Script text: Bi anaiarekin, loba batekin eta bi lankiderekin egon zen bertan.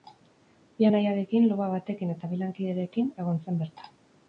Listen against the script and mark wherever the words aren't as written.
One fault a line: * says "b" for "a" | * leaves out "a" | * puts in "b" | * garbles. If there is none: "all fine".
all fine